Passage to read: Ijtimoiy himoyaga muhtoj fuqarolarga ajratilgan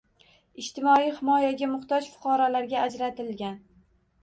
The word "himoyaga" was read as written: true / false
true